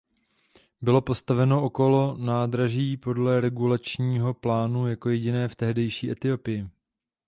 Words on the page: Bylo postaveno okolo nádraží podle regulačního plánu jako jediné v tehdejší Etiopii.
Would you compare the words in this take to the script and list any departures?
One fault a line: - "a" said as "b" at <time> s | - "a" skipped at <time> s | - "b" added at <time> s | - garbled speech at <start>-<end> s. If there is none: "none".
none